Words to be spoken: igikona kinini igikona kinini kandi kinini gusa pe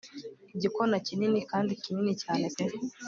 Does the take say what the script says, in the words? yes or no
no